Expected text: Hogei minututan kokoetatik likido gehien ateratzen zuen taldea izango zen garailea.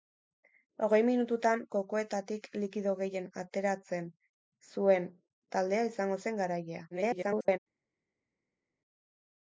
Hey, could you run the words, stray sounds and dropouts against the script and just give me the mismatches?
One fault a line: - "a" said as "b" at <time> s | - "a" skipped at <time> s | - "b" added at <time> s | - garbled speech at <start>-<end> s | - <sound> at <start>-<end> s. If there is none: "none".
- garbled speech at 6.9-7.6 s